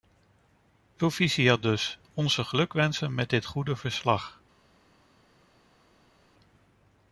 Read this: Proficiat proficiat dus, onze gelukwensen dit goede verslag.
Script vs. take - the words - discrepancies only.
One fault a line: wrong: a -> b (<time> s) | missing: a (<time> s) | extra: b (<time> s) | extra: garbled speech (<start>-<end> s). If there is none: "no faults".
missing: proficiat (1.6 s)
extra: met (3.1 s)